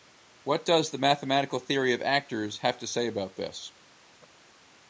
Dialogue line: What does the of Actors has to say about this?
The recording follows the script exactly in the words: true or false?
false